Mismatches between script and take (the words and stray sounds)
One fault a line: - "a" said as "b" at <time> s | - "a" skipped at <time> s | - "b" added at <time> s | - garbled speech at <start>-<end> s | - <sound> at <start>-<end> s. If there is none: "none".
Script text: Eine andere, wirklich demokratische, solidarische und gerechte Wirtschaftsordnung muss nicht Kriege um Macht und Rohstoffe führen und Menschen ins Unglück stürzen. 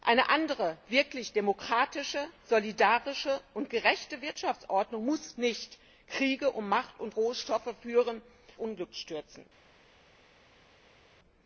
- "und Menschen ins" skipped at 8.2 s